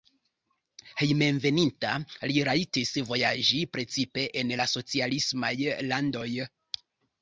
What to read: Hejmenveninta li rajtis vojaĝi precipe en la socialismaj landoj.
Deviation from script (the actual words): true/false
false